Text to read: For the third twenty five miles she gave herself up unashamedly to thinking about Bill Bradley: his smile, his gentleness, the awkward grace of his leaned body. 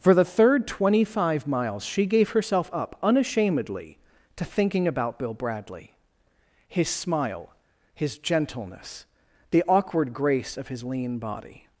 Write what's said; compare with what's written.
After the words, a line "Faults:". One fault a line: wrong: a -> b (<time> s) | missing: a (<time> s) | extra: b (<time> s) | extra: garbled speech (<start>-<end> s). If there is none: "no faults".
For the third twenty five miles she gave herself up unashamedly to thinking about Bill Bradley: his smile, his gentleness, the awkward grace of his lean body.
Faults:
wrong: leaned -> lean (10.8 s)